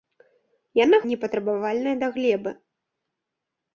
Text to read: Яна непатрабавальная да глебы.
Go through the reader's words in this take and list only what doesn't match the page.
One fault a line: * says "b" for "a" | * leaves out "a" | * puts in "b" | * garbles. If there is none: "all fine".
all fine